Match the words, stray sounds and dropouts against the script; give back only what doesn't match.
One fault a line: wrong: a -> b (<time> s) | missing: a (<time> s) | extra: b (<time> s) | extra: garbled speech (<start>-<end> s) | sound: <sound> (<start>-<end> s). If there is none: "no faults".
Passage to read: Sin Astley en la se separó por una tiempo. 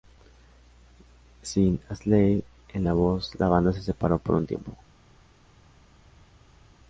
extra: voz la banda (2.9 s)
wrong: una -> un (4.3 s)